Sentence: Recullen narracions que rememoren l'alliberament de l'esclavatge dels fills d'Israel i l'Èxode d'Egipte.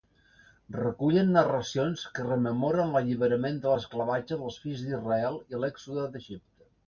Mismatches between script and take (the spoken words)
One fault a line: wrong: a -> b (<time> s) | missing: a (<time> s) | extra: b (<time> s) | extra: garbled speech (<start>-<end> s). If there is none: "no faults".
no faults